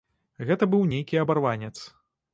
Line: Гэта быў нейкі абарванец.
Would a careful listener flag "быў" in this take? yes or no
no